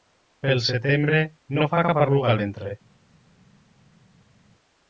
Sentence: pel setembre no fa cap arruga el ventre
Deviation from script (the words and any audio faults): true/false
false